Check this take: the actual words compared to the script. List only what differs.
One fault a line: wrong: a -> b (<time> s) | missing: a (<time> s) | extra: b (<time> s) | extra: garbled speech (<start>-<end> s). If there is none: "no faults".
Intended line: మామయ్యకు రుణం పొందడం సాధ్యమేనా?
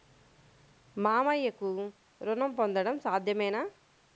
no faults